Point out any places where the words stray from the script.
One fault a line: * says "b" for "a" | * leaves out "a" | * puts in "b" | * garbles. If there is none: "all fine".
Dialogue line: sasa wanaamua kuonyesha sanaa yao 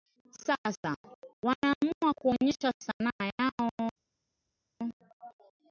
all fine